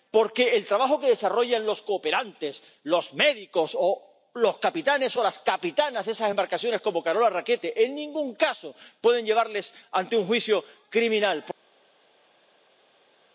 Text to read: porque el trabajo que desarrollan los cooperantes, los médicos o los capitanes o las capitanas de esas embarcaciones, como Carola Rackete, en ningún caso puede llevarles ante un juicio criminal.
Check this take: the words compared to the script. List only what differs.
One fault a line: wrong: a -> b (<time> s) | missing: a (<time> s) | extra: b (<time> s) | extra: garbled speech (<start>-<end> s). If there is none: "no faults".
no faults